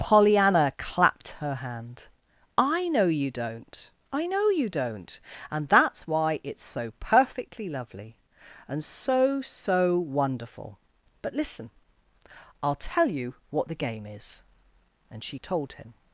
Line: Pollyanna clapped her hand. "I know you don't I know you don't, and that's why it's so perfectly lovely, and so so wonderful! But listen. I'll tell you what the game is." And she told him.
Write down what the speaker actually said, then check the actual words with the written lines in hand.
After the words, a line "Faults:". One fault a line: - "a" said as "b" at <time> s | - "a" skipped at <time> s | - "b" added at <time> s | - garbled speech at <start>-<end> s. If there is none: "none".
Pollyanna clapped her hand. "I know you don't I know you don't, and that's why it's so perfectly lovely, and so so wonderful! But listen. I'll tell you what the game is." And she told him.
Faults:
none